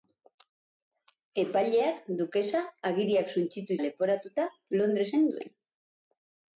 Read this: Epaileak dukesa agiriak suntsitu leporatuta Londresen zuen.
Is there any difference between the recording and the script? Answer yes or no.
no